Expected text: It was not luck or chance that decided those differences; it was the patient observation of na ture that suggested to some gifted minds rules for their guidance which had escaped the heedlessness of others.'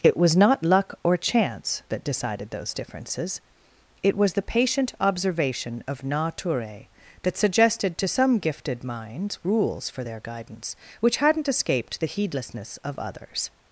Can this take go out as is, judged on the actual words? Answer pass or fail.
fail